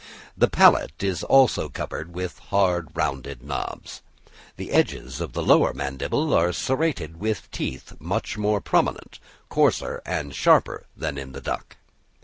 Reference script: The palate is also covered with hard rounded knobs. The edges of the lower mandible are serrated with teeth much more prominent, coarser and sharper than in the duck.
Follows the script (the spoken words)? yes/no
yes